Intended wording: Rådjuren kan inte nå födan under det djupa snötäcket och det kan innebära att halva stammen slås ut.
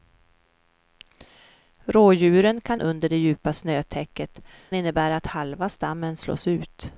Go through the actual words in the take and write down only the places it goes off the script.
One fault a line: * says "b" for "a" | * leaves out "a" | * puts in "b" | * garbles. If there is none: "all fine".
* leaves out "inte nå födan"
* leaves out "och det kan"